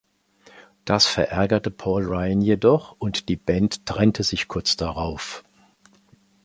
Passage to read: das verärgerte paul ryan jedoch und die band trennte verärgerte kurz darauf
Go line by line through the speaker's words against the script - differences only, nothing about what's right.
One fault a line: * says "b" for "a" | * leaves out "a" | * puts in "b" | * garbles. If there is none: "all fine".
* says "sich" for "verärgerte"